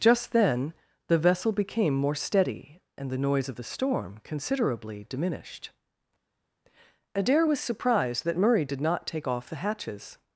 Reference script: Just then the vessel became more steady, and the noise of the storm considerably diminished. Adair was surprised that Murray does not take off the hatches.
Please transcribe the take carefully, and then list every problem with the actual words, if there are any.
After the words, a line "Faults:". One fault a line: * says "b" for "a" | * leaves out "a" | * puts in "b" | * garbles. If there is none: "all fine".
Just then the vessel became more steady, and the noise of the storm considerably diminished. Adair was surprised that Murray did not take off the hatches.
Faults:
* says "did" for "does"